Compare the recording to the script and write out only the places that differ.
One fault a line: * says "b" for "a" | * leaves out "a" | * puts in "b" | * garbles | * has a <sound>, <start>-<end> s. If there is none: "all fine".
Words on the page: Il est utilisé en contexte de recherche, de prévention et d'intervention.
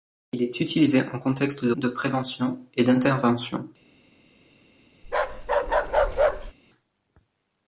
* leaves out "recherche"
* has a bark, 5.0-6.5 s